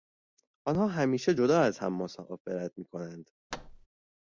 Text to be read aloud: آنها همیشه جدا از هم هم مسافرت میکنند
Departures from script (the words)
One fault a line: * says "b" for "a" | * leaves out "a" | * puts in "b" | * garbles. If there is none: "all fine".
* leaves out "هم"